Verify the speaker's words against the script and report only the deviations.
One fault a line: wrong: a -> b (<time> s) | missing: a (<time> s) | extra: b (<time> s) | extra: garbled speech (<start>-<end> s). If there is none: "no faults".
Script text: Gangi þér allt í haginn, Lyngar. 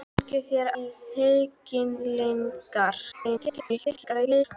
missing: allt (0.7 s)
extra: garbled speech (3.1-4.4 s)